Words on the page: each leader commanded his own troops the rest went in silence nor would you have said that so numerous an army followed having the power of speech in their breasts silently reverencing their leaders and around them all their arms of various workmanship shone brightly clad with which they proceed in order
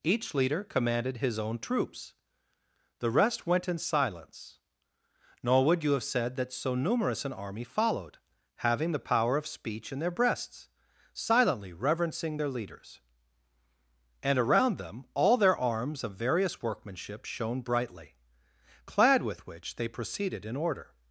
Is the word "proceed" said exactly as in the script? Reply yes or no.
no